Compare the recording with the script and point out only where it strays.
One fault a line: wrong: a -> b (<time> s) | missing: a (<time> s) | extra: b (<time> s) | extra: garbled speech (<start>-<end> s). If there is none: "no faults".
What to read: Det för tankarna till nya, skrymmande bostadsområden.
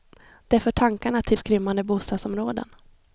missing: nya (1.4 s)